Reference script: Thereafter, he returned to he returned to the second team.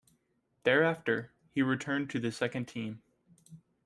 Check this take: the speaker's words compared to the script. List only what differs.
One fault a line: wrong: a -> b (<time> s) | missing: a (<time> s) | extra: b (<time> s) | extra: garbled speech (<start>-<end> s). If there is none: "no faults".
missing: he returned to (2.2 s)